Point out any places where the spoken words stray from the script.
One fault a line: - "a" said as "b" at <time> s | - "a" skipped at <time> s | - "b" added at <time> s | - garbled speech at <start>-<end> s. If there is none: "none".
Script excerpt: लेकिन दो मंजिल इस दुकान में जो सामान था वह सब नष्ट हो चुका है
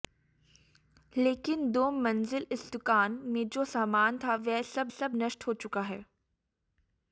- "सब" added at 4.9 s